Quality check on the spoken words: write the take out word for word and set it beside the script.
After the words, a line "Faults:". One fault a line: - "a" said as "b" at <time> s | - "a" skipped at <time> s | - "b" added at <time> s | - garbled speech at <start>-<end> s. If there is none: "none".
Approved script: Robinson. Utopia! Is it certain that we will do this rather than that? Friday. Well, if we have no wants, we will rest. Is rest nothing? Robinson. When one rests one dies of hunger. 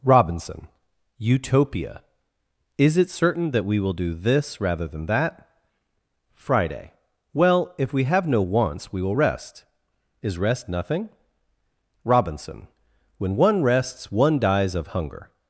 Robinson. Utopia! Is it certain that we will do this rather than that? Friday. Well, if we have no wants, we will rest. Is rest nothing? Robinson. When one rests one dies of hunger.
Faults:
none